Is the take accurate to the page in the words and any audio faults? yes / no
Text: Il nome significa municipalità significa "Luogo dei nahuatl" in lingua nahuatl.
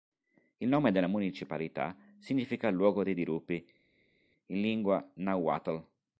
no